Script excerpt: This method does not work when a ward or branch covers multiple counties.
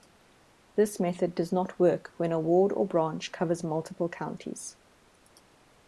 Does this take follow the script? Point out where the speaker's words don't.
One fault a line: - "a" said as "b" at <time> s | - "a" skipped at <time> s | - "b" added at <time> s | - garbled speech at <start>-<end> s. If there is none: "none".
none